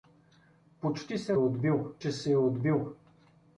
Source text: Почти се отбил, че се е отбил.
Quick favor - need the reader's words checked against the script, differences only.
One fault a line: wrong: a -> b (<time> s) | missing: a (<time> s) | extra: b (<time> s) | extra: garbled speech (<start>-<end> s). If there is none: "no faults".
no faults